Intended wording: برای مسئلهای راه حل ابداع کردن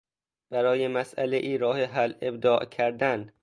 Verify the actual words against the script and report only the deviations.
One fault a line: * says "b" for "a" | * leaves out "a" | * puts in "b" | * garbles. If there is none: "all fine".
all fine